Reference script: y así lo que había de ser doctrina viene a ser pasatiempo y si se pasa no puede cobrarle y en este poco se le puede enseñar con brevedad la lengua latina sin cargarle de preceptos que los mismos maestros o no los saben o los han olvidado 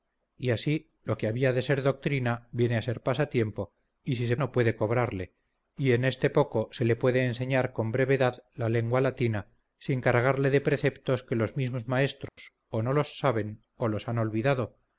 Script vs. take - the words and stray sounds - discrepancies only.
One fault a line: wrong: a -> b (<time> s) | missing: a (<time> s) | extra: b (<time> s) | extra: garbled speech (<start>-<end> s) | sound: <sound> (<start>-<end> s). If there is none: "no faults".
missing: pasa (4.3 s)
sound: dropout (12.3-12.4 s)